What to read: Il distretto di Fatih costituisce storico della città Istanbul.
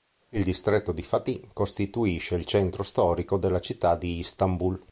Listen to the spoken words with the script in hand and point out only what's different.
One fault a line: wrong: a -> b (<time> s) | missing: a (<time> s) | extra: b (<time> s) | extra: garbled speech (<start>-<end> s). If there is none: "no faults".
extra: il centro (2.3 s)
extra: di (4.0 s)